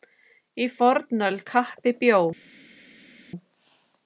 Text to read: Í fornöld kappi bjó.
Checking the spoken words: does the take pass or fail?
pass